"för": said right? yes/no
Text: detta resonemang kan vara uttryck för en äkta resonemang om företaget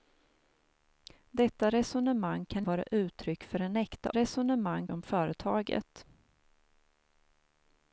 yes